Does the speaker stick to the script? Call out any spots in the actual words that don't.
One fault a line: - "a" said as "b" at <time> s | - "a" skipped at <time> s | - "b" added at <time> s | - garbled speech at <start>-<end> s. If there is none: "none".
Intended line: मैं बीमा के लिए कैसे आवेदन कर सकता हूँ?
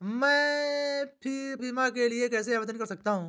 none